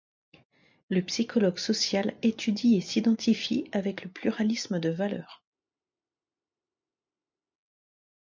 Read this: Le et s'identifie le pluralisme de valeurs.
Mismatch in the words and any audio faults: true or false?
true